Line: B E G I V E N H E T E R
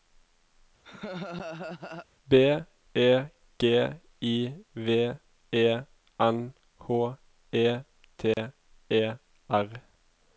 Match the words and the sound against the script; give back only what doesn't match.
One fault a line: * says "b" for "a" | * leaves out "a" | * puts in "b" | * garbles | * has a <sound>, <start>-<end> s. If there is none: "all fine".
* has a laugh, 0.8-2.1 s
* has a dropout, 8.3-8.4 s